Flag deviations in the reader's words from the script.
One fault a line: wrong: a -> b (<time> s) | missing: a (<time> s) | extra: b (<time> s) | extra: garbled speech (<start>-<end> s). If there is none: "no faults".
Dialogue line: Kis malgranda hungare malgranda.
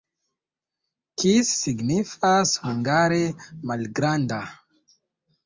wrong: malgranda -> signifas (1.6 s)